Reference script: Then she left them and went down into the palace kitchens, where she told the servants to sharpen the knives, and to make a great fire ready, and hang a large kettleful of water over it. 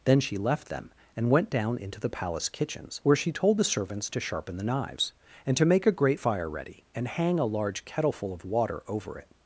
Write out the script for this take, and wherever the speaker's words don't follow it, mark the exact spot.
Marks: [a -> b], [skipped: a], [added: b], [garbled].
Then she left them and went down into the palace kitchens, where she told the servants to sharpen the knives, and to make a great fire ready, and hang a large kettleful of water over it.